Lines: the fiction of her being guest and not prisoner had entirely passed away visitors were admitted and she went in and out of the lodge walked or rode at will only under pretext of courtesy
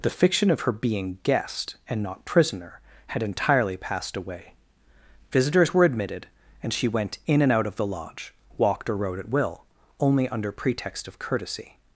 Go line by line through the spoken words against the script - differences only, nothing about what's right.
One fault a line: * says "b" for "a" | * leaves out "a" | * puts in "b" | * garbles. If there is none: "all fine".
all fine